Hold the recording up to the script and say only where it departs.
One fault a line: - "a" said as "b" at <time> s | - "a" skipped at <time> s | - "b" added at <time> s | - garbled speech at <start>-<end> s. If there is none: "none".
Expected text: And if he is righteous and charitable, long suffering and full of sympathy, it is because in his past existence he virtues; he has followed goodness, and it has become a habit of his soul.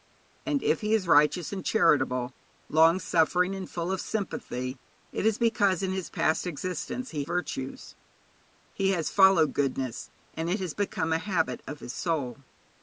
none